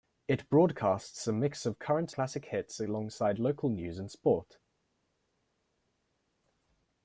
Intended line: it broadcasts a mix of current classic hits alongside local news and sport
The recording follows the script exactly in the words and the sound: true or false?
true